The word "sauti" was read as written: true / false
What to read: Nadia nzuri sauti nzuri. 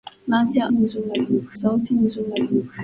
true